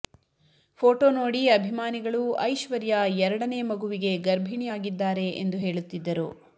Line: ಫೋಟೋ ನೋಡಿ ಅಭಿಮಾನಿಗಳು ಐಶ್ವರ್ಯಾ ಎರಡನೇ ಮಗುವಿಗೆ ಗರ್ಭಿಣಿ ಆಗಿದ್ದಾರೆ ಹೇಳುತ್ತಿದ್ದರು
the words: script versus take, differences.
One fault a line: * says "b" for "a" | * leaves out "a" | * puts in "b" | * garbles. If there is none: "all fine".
* puts in "ಎಂದು"